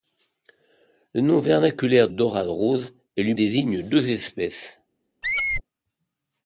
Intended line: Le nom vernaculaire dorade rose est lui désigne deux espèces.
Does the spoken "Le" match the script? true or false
true